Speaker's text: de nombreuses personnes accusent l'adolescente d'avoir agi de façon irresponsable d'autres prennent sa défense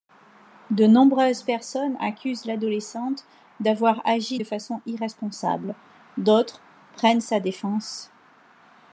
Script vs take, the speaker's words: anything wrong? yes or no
no